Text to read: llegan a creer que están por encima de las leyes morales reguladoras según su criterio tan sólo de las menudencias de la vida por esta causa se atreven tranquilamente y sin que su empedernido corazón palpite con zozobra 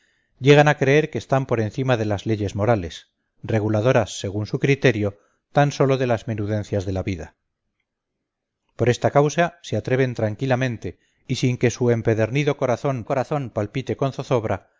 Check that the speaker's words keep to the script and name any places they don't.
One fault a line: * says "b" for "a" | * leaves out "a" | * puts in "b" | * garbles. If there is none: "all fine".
* puts in "corazón"